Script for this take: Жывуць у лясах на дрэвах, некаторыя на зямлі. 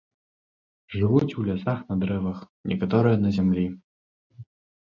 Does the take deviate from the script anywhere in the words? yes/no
no